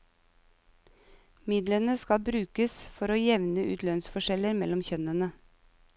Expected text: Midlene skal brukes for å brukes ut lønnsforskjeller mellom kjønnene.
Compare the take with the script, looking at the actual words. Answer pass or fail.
fail